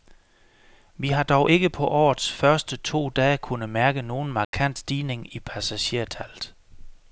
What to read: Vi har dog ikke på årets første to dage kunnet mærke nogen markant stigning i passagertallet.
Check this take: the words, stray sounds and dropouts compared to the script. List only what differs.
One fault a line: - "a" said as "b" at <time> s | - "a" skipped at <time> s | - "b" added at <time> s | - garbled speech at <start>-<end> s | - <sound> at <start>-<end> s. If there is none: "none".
- dropout at 4.4-4.5 s